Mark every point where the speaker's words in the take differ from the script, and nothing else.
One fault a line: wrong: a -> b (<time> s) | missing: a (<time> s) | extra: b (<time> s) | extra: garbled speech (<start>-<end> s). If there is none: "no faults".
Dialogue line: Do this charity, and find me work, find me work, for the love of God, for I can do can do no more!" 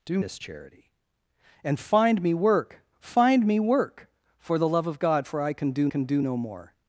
no faults